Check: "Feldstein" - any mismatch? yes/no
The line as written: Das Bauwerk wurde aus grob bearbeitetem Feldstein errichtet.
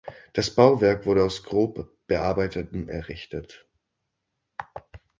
yes